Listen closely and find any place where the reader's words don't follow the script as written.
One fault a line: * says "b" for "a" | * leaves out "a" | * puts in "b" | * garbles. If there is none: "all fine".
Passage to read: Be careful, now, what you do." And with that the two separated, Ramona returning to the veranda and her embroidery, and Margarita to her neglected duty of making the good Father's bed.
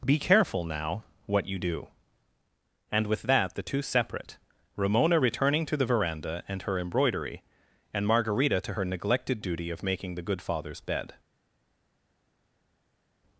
* says "separate" for "separated"